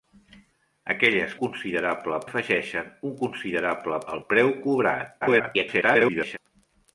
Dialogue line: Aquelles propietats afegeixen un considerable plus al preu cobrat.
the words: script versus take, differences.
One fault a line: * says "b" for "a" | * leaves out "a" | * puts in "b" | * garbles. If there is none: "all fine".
* says "considerable" for "propietats"
* leaves out "plus"
* garbles